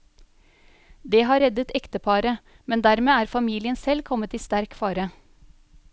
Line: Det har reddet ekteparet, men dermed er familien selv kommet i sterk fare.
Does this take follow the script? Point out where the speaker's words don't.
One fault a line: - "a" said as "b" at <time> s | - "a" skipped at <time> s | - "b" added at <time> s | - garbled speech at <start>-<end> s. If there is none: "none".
none